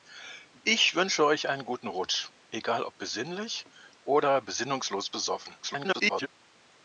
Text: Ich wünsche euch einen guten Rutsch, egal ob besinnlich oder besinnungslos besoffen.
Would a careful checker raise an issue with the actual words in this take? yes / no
yes